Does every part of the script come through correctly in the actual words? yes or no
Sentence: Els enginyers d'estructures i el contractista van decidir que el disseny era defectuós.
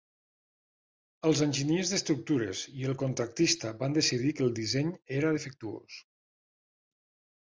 yes